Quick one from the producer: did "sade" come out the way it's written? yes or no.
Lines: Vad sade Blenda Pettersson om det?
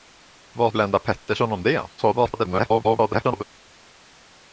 no